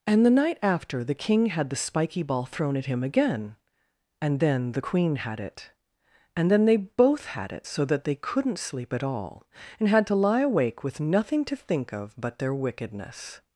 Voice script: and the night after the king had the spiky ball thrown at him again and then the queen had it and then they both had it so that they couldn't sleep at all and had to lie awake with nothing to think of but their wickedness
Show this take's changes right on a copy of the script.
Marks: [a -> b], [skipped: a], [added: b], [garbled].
and the night after the king had the spiky ball thrown at him again and then the queen had it and then they both had it so that they couldn't sleep at all and had to lie awake with nothing to think of but their wickedness